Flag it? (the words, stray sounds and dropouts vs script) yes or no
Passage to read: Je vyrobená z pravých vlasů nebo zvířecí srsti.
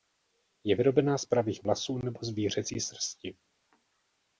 no